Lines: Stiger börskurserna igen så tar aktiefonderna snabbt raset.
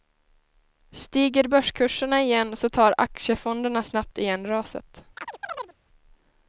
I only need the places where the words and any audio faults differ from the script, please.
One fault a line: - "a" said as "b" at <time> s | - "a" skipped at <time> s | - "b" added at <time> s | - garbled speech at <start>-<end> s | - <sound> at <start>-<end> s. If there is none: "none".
- "igen" added at 4.2 s
- chirp at 5.2-5.7 s